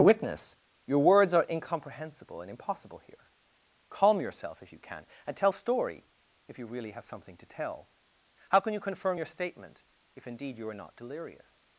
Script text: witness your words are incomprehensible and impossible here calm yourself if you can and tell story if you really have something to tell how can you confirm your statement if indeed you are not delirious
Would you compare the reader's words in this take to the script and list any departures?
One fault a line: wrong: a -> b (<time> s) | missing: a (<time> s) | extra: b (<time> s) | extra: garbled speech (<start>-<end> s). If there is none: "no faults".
no faults